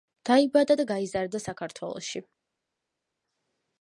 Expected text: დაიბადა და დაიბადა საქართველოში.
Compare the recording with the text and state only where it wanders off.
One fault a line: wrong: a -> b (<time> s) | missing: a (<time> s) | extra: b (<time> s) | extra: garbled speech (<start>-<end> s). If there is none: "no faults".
wrong: დაიბადა -> გაიზარდა (0.9 s)